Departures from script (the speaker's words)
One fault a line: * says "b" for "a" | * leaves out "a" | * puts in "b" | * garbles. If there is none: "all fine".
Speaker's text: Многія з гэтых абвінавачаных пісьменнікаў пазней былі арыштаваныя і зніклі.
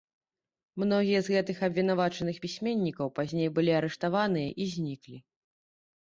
all fine